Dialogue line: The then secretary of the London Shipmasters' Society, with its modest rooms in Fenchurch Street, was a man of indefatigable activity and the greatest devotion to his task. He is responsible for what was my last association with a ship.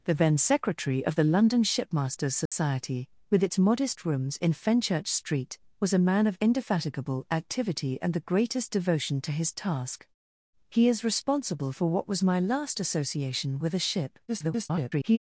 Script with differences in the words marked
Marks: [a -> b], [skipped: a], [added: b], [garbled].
The then secretary of the London Shipmasters' Society, with its modest rooms in Fenchurch Street, was a man of indefatigable activity and the greatest devotion to his task. He is responsible for what was my last association with a ship. [garbled]